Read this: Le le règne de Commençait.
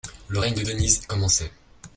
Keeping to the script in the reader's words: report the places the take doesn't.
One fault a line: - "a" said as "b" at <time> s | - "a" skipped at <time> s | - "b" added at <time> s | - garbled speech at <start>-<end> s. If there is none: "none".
- "le" skipped at 0.4 s
- "Denise" added at 0.6 s